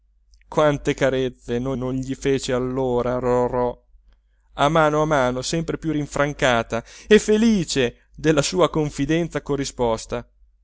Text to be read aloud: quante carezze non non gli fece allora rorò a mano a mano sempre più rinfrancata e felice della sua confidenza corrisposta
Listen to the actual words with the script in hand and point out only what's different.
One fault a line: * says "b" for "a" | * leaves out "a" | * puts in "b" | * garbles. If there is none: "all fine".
all fine